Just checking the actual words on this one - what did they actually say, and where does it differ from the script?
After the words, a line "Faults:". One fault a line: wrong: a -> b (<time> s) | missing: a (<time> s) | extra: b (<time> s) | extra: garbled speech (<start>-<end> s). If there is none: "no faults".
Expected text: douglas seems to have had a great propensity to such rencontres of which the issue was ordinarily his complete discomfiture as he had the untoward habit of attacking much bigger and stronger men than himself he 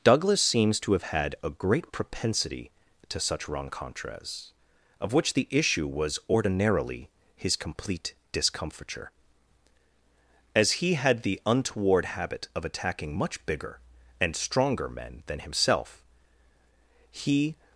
douglas seems to have had a great propensity to such rencontres of which the issue was ordinarily his complete discomfiture as he had the untoward habit of attacking much bigger and stronger men than himself he
Faults:
no faults